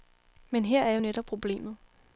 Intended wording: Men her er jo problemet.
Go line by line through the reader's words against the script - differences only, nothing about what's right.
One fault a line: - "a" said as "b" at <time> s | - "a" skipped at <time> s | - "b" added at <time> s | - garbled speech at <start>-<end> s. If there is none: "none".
- "netop" added at 1.0 s